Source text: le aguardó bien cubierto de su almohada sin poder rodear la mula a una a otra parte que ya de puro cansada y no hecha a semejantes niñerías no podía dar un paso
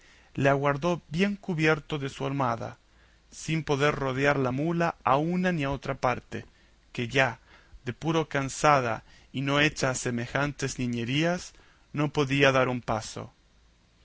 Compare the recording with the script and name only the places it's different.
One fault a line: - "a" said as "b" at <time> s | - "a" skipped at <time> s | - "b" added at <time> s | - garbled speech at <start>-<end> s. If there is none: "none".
- "ni" added at 5.5 s